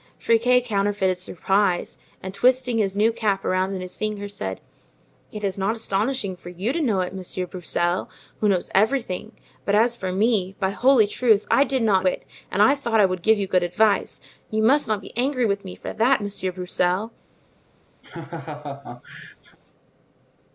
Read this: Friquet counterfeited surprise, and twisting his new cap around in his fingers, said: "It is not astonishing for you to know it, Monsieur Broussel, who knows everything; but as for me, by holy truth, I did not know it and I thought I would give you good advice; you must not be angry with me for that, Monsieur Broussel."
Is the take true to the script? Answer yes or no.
no